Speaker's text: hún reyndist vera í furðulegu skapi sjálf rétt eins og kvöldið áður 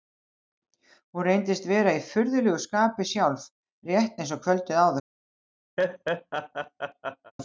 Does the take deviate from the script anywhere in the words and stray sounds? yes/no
yes